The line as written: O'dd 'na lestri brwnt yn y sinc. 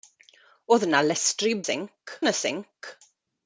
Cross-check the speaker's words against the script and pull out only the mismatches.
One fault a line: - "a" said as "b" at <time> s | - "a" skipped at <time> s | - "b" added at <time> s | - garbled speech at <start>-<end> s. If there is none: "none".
- "brwnt" said as "sinc" at 1.6 s